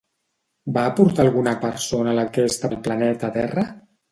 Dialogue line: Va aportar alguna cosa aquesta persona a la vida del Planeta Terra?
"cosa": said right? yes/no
no